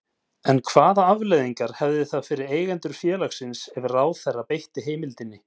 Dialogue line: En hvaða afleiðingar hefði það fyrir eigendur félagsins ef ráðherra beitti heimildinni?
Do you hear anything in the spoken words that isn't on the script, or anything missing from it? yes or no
no